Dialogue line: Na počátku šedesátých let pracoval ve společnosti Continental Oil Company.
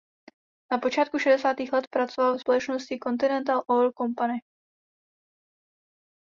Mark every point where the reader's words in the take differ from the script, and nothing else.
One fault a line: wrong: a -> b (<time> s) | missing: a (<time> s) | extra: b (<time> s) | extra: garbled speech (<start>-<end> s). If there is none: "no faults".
no faults